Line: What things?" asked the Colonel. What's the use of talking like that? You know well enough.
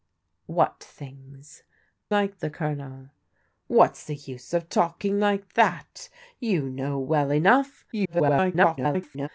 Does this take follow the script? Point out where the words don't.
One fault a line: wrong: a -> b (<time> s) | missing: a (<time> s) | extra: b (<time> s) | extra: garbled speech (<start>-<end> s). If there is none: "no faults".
wrong: asked -> like (2.1 s)
extra: garbled speech (7.9-9.3 s)